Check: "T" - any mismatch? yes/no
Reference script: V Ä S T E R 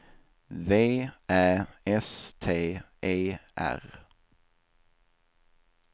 no